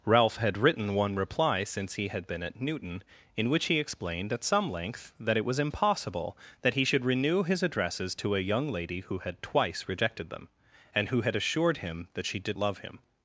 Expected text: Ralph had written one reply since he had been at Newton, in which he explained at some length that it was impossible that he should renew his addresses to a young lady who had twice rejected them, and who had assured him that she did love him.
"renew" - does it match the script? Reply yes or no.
yes